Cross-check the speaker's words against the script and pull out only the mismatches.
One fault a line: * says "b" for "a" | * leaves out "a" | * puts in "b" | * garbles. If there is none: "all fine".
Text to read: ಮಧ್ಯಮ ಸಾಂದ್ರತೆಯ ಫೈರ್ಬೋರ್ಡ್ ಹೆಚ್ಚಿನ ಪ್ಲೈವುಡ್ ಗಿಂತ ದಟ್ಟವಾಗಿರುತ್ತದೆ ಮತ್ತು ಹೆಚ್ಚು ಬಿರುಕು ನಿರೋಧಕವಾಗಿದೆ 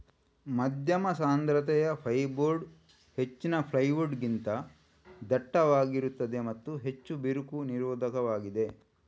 all fine